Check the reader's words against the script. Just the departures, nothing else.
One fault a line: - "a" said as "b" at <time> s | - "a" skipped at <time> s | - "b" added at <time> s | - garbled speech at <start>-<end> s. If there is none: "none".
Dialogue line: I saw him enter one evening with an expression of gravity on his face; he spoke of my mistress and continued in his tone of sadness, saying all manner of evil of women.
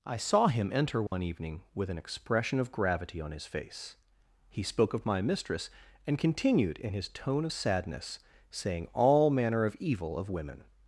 none